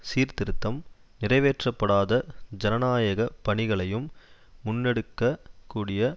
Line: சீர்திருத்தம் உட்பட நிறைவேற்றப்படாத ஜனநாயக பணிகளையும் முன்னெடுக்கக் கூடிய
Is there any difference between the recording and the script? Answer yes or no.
yes